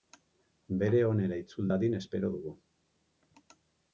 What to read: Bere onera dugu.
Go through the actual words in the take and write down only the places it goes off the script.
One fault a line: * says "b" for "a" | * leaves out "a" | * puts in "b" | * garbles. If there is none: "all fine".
* puts in "itzul dadin espero"